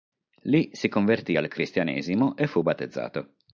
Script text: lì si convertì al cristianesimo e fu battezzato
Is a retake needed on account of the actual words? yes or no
no